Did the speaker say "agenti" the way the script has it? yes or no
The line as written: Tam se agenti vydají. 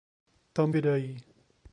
no